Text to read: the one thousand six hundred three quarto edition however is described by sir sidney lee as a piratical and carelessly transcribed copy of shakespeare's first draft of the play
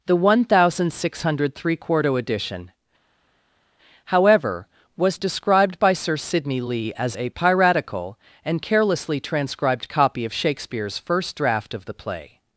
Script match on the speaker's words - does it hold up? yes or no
no